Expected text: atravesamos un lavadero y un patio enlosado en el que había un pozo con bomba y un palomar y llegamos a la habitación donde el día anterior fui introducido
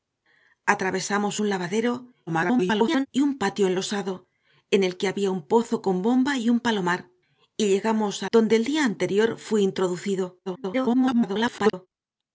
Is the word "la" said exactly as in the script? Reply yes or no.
no